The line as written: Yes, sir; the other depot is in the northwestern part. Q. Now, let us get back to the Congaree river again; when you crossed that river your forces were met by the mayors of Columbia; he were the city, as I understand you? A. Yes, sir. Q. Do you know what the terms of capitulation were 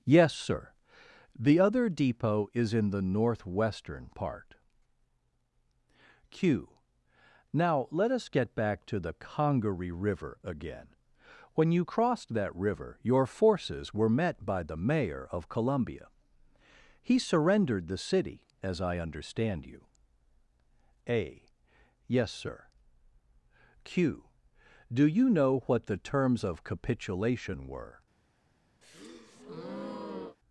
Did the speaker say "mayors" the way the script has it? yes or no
no